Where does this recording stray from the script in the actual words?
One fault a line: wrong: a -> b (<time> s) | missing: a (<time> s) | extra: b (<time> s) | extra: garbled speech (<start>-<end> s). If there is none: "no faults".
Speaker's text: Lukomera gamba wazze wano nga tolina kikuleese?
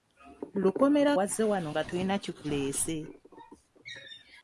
missing: gamba (1.1 s)